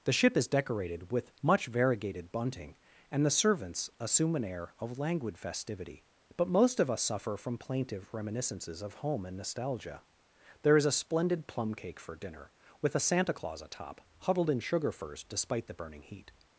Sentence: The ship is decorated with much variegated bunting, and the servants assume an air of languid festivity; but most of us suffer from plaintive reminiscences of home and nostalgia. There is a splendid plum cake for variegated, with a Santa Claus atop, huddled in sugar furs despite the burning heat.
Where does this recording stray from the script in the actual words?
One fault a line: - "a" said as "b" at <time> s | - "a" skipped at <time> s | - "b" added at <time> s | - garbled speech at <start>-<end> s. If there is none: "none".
- "variegated" said as "dinner" at 12.2 s